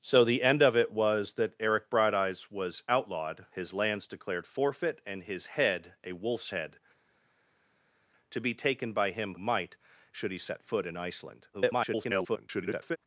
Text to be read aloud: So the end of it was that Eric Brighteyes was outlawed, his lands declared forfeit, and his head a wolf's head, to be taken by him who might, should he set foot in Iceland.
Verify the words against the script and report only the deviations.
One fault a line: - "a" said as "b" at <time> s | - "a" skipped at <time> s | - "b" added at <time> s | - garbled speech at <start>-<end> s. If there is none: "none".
- "who" skipped at 9.3 s
- garbled speech at 11.5-13.0 s